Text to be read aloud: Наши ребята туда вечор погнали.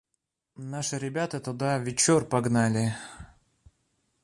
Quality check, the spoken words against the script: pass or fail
pass